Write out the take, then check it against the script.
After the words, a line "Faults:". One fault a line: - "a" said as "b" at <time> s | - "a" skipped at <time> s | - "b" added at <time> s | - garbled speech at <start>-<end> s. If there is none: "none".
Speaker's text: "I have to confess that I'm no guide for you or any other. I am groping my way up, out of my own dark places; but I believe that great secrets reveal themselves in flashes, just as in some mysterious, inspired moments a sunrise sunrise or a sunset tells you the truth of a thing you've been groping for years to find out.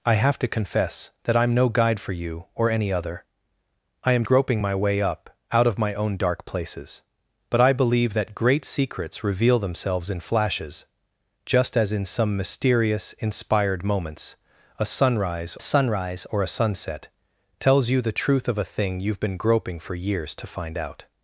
"I have to confess that I'm no guide for you or any other. I am groping my way up, out of my own dark places; but I believe that great secrets reveal themselves in flashes, just as in some mysterious, inspired moments a sunrise sunrise or a sunset tells you the truth of a thing you've been groping for years to find out.
Faults:
none